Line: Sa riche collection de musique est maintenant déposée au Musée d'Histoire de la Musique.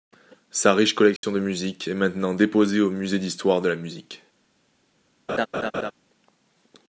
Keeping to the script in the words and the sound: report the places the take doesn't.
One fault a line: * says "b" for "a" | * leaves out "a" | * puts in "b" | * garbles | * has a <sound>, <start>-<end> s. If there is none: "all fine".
* has a dropout, 1.2-1.2 s
* has a laugh, 5.3-5.9 s